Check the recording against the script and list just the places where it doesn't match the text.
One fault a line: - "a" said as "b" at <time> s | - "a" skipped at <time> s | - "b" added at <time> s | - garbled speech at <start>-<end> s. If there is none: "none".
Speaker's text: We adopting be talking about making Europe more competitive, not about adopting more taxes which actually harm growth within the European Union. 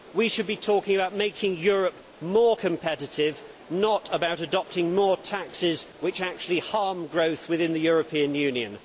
- "adopting" said as "should" at 0.3 s